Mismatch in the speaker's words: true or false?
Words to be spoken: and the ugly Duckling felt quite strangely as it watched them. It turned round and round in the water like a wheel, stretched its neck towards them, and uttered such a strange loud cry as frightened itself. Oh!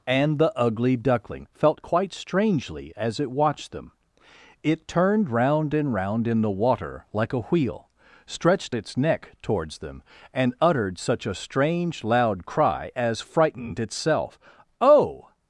false